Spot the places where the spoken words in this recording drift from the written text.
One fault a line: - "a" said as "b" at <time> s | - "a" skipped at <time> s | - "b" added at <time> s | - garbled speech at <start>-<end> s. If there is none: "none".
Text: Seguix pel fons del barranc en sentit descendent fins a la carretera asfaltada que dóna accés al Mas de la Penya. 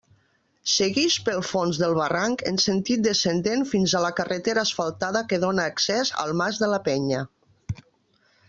none